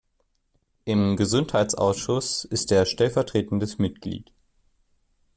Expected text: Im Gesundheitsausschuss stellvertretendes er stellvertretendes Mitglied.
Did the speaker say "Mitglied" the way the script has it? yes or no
yes